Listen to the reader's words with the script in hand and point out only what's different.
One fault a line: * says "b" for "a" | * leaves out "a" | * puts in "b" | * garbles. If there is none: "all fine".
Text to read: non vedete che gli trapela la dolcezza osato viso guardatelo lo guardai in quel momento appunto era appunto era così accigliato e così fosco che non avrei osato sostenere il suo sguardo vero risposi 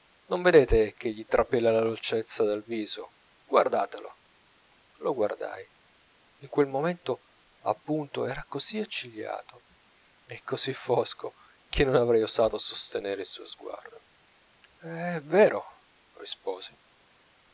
* says "dal" for "osato"
* leaves out "appunto era"
* puts in "è"